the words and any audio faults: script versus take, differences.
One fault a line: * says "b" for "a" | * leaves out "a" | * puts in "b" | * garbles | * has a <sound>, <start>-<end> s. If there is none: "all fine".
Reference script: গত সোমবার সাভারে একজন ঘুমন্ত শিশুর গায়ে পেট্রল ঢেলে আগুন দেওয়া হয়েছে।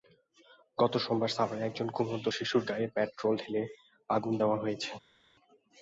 all fine